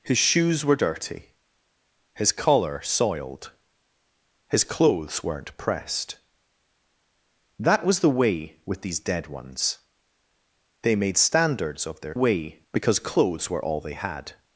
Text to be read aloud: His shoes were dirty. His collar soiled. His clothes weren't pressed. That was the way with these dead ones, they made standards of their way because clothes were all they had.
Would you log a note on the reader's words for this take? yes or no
no